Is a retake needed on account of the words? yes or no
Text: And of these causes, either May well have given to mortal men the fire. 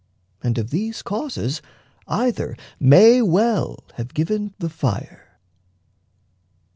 yes